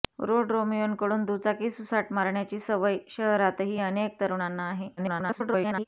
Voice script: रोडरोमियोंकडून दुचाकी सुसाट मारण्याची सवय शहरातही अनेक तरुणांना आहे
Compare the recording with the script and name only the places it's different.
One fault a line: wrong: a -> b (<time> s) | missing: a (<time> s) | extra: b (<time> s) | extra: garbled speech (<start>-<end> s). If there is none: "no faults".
extra: garbled speech (5.0-5.8 s)